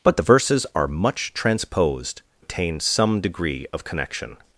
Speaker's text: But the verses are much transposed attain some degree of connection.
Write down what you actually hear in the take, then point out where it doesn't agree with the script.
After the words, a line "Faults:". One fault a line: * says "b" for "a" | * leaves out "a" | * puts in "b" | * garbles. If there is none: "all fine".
But the verses are much transposed attain some degree of connection.
Faults:
all fine